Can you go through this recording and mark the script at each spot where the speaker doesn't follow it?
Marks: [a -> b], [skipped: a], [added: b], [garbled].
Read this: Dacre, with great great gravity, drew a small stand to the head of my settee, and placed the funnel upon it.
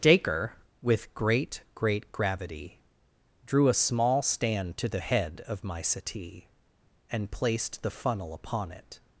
Dacre, with great great gravity, drew a small stand to the head of my settee, and placed the funnel upon it.